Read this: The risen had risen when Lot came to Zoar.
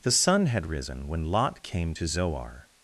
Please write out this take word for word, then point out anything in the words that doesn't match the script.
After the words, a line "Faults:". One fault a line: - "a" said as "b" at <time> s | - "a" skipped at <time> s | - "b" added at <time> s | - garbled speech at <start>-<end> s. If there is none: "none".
The sun had risen when Lot came to Zoar.
Faults:
- "risen" said as "sun" at 0.1 s